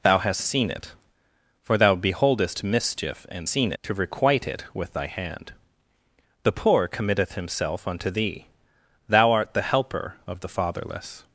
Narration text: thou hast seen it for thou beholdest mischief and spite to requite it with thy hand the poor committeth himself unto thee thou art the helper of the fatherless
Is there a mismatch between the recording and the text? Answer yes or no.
yes